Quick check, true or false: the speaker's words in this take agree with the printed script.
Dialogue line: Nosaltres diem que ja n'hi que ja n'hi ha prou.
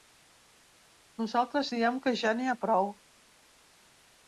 false